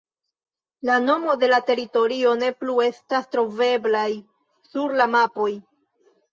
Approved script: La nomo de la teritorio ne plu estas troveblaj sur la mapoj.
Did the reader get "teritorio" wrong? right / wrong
right